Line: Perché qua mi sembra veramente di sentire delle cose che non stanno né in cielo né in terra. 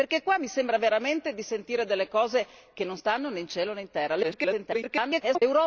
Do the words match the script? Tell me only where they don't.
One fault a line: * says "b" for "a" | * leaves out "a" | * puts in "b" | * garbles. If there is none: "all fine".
* garbles